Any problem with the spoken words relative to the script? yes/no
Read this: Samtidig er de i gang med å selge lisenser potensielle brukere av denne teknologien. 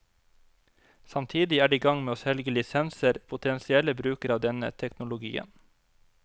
no